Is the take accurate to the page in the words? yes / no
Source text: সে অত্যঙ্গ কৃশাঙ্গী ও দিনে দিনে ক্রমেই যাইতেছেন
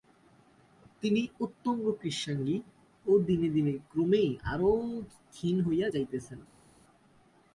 no